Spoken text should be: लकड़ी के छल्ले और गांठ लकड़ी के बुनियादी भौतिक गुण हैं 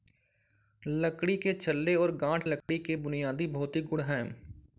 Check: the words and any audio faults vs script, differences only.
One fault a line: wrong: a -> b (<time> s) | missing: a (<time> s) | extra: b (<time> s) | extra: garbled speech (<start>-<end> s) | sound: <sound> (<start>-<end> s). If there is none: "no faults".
sound: dropout (2.6-2.7 s)